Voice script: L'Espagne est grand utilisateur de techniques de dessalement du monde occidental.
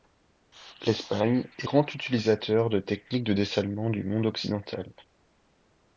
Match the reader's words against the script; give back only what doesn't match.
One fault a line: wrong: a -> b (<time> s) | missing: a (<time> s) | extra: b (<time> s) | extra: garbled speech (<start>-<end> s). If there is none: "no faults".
no faults